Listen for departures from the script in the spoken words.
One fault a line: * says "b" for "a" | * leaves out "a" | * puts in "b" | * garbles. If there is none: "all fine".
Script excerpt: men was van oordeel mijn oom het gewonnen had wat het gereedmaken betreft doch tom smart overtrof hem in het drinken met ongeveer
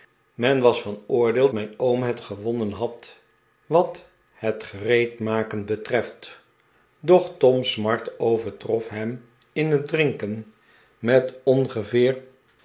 all fine